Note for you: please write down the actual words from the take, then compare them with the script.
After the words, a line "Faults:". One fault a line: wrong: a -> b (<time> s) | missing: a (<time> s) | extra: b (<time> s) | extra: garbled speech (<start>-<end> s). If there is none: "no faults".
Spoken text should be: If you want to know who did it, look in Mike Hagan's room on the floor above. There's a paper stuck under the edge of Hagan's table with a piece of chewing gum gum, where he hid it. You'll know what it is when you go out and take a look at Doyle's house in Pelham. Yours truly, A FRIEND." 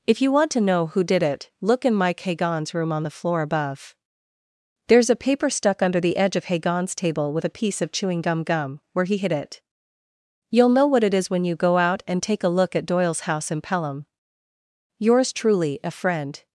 If you want to know who did it, look in Mike Hagan's room on the floor above. There's a paper stuck under the edge of Hagan's table with a piece of chewing gum gum, where he hid it. You'll know what it is when you go out and take a look at Doyle's house in Pelham. Yours truly, A FRIEND."
Faults:
no faults